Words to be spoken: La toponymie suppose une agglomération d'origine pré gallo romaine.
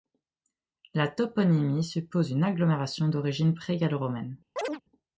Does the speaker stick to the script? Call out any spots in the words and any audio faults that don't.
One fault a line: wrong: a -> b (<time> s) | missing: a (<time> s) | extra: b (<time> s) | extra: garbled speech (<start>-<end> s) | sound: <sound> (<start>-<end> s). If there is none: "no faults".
sound: chirp (4.6-4.8 s)